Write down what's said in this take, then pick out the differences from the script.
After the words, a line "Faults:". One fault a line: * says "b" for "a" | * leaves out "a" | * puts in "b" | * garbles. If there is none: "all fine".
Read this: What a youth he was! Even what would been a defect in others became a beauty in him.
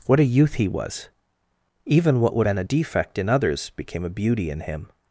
What a youth he was! Even what would been a defect in others became a beauty in him.
Faults:
all fine